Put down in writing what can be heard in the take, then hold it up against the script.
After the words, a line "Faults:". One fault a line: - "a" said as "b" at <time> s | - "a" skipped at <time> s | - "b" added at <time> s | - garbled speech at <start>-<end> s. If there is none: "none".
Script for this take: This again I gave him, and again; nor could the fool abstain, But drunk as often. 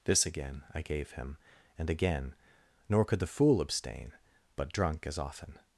This again I gave him, and again; nor could the fool abstain, But drunk as often.
Faults:
none